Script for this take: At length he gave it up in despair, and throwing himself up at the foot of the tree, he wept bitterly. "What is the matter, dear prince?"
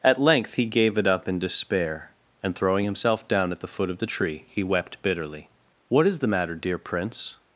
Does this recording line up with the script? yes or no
no